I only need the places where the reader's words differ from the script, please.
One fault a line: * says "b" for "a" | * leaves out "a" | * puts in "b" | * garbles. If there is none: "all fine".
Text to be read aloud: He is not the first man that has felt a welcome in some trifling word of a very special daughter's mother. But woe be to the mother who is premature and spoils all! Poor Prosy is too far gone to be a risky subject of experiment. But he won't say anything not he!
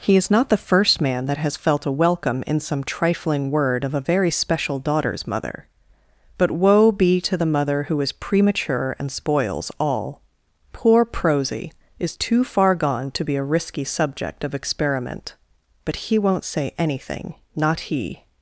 all fine